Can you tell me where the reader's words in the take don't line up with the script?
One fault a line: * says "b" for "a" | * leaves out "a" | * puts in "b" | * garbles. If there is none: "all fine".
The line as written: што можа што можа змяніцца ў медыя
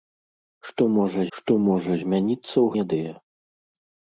all fine